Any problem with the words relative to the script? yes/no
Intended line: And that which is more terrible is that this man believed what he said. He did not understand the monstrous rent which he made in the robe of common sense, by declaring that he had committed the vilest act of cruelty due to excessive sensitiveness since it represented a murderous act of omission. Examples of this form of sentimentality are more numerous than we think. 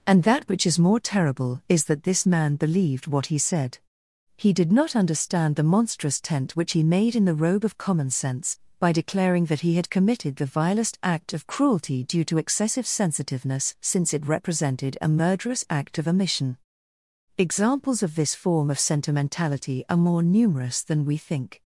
yes